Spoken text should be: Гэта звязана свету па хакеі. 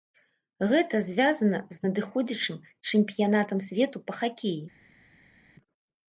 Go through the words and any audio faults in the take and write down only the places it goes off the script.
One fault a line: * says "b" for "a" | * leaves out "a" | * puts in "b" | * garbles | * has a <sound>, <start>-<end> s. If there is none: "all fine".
* puts in "з надыходзячым чэмпіянатам"